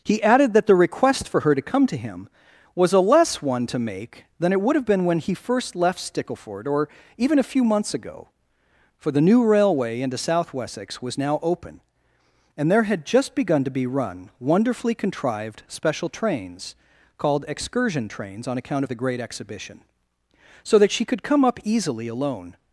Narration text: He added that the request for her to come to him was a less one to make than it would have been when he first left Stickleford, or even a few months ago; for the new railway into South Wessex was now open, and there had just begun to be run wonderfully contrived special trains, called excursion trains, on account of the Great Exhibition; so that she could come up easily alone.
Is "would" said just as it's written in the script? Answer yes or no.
yes